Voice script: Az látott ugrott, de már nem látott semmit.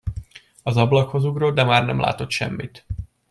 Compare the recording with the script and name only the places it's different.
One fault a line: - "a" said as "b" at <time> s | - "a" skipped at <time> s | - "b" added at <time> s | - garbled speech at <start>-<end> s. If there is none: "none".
- "látott" said as "ablakhoz" at 0.8 s